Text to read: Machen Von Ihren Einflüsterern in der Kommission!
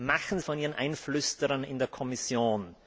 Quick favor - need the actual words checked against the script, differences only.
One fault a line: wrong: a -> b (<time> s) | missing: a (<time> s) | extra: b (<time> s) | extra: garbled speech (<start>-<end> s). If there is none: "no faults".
no faults